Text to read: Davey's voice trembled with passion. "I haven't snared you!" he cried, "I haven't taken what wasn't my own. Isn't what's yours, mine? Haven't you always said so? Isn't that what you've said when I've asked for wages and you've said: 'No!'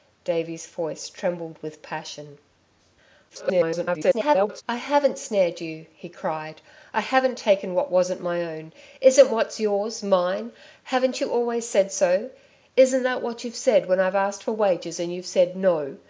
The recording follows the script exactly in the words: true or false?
false